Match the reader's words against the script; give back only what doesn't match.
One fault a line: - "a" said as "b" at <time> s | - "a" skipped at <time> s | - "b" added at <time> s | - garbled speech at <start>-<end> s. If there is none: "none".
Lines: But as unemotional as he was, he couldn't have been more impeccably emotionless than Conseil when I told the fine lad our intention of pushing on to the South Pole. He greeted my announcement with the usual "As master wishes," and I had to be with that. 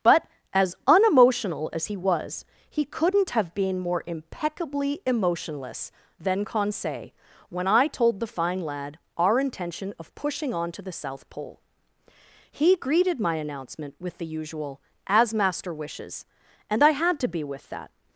none